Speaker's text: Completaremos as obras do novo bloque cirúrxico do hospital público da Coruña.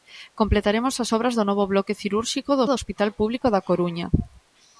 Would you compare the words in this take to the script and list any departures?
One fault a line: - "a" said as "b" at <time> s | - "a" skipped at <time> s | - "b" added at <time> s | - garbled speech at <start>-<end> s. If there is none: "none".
- "do" added at 2.7 s